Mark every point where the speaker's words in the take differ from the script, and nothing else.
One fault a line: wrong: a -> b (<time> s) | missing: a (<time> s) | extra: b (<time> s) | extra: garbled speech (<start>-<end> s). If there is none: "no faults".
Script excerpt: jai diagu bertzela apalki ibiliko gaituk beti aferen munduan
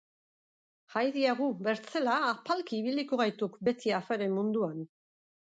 no faults